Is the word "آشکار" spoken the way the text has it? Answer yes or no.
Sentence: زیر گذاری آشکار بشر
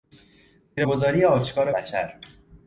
yes